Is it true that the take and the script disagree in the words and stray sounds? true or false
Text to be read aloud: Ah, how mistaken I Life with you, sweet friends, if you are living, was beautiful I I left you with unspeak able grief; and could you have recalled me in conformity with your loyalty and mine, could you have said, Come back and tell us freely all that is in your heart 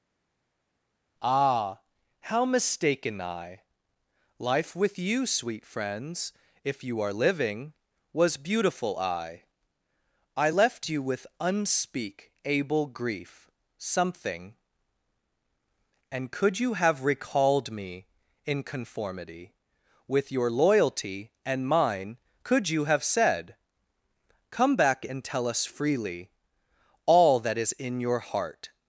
true